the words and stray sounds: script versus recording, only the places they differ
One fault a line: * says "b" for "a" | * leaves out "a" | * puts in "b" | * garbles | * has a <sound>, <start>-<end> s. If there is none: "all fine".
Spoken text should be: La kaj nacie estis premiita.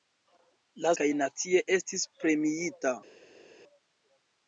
all fine